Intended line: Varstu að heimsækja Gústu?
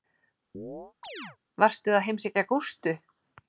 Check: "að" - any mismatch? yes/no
no